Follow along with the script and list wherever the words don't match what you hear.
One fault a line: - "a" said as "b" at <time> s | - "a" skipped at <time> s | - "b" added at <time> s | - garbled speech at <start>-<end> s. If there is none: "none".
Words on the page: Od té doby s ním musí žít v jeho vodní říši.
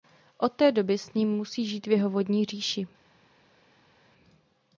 none